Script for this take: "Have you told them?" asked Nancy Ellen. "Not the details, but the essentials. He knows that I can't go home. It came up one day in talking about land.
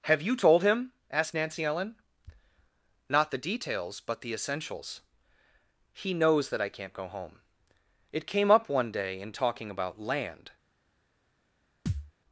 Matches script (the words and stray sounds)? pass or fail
fail